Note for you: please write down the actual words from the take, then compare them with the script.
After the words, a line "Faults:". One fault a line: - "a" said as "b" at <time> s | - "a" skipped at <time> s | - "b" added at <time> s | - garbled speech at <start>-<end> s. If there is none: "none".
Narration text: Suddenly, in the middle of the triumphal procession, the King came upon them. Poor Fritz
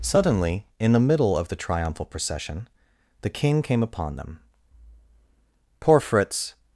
Suddenly, in the middle of the triumphal procession, the King came upon them. Poor Fritz
Faults:
none